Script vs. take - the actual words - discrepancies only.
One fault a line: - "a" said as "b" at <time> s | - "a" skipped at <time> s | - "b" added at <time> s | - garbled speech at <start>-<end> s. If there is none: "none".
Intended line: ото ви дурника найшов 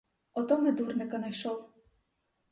- "ви" said as "ми" at 0.6 s